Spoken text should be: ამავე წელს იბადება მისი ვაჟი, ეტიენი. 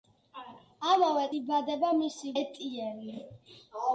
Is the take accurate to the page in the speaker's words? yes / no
no